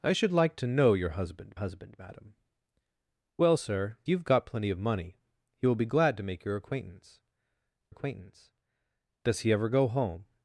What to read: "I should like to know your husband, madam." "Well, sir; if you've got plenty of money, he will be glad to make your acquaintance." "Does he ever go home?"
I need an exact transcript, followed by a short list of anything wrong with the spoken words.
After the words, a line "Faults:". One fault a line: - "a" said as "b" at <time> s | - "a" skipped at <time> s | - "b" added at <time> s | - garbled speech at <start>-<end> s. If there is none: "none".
"I should like to know your husband husband, madam." "Well, sir; you've got plenty of money, he will be glad to make your acquaintance acquaintance." "Does he ever go home?"
Faults:
- "husband" added at 1.5 s
- "if" skipped at 4.0 s
- "acquaintance" added at 7.9 s